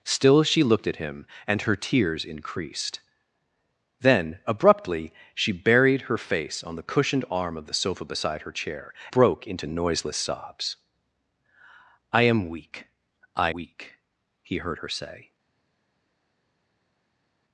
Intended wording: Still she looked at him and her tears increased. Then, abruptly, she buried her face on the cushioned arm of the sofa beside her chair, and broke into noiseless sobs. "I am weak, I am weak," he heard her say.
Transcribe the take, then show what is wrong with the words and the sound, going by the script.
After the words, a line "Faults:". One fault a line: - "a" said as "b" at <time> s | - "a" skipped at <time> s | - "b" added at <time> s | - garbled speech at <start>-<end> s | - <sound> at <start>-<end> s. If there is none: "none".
Still she looked at him and her tears increased. Then, abruptly, she buried her face on the cushioned arm of the sofa beside her chair, broke into noiseless sobs. "I am weak, I weak," he heard her say.
Faults:
- "and" skipped at 8.9 s
- "am" skipped at 13.5 s